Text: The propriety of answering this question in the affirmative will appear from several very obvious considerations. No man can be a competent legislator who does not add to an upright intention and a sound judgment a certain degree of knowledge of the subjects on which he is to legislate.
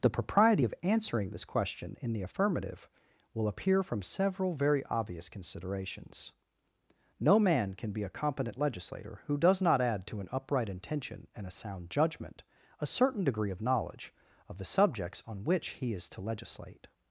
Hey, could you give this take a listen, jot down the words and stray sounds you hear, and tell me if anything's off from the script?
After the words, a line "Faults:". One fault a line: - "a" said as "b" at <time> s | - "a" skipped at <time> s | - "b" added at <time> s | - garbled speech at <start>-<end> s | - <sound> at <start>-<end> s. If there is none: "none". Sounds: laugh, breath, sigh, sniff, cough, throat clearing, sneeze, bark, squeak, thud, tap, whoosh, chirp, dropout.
The propriety of answering this question in the affirmative will appear from several very obvious considerations. No man can be a competent legislator who does not add to an upright intention and a sound judgment a certain degree of knowledge of the subjects on which he is to legislate.
Faults:
none